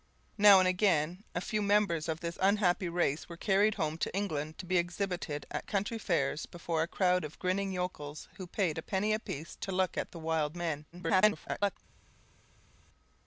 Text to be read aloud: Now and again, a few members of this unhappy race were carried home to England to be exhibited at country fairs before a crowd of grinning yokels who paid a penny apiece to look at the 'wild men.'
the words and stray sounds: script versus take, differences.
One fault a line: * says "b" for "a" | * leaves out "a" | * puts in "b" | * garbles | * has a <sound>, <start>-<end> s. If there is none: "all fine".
* garbles